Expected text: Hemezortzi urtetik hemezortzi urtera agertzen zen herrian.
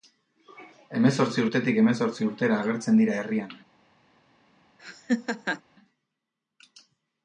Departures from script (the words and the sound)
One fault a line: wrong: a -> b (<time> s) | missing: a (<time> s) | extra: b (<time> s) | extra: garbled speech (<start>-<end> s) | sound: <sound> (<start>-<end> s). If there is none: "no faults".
wrong: zen -> dira (3.0 s)
sound: laugh (4.8-5.6 s)